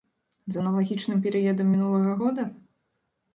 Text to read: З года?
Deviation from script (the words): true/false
true